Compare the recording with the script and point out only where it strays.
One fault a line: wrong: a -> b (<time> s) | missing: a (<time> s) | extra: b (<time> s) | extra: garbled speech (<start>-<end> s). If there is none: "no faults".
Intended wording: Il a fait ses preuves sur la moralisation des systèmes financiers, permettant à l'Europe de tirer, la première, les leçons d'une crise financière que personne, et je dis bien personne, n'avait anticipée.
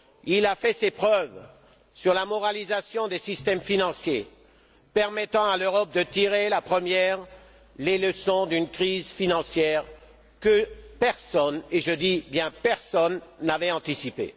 no faults